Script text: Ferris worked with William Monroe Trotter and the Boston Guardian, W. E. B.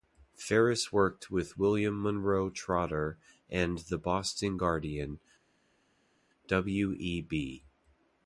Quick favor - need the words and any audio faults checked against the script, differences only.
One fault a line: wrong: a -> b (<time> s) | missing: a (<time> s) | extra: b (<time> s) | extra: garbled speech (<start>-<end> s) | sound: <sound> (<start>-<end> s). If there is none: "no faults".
no faults